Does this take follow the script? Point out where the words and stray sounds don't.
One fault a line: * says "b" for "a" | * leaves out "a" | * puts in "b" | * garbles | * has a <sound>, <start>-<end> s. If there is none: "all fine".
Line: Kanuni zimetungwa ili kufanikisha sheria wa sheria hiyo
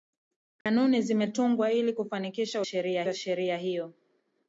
* has a dropout, 0.6-0.7 s